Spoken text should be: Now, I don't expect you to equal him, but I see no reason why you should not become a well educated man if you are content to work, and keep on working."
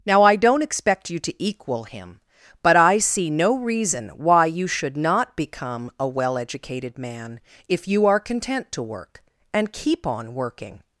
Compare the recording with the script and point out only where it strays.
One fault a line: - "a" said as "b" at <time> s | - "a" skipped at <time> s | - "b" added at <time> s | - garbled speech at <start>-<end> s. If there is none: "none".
none